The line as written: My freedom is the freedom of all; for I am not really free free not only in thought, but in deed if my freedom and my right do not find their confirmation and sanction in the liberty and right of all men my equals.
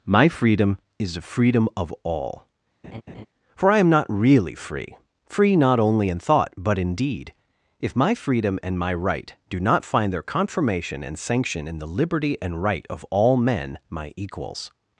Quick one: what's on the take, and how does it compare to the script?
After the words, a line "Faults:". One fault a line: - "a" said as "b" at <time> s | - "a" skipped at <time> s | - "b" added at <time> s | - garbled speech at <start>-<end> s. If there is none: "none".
My freedom is the freedom of all; for I am not really free free not only in thought, but in deed if my freedom and my right do not find their confirmation and sanction in the liberty and right of all men my equals.
Faults:
none